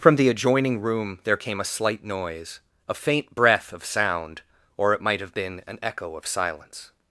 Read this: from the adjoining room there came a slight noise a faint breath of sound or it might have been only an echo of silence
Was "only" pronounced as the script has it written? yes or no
no